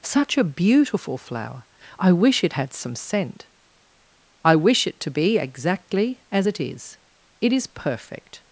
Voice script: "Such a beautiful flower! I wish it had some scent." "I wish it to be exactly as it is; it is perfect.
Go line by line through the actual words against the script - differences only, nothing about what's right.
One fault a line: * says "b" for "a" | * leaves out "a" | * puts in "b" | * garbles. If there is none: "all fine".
all fine